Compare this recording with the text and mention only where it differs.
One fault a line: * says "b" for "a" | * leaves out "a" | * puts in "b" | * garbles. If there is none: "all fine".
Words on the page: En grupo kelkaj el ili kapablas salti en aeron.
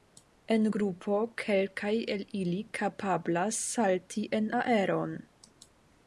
all fine